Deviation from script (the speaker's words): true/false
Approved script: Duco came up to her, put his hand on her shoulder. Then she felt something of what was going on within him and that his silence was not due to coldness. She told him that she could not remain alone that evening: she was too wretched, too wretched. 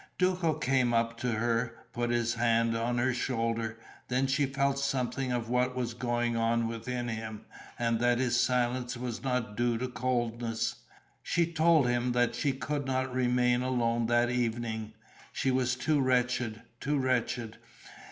false